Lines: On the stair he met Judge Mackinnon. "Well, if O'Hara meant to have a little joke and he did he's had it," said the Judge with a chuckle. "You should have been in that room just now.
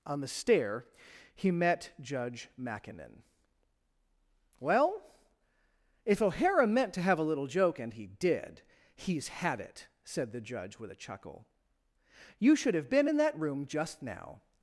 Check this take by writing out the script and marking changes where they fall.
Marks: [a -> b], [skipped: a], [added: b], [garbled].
On the stair he met Judge Mackinnon. "Well, if O'Hara meant to have a little joke and he did he's had it," said the Judge with a chuckle. "You should have been in that room just now.